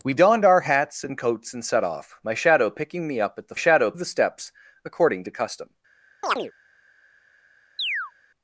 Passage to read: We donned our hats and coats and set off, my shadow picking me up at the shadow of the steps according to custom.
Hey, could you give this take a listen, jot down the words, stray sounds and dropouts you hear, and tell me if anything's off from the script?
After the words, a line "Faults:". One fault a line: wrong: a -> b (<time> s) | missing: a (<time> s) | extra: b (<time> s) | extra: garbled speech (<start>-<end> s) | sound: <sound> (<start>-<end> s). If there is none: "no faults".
We donned our hats and coats and set off, my shadow picking me up at the shadow of the steps according to custom.
Faults:
sound: chirp (6.2-6.5 s)
sound: chirp (7.8-8.1 s)